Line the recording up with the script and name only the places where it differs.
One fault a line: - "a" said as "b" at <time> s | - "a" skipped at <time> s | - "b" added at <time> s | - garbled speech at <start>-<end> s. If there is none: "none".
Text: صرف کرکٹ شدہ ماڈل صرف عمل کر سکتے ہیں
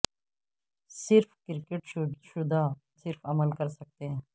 - "ماڈل" skipped at 2.6 s